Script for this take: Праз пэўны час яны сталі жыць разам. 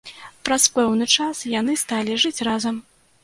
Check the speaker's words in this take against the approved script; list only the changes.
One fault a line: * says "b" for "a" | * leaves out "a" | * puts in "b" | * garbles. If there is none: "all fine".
all fine